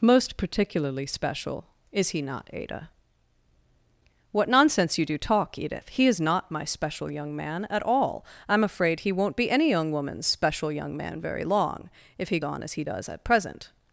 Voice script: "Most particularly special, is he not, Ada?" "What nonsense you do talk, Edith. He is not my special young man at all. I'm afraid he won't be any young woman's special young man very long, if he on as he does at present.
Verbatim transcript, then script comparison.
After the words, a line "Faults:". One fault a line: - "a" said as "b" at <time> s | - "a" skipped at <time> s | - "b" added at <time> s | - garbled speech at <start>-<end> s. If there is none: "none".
"Most particularly special, is he not, Ada?" "What nonsense you do talk, Edith. He is not my special young man at all. I'm afraid he won't be any young woman's special young man very long, if he on as he does at present.
Faults:
none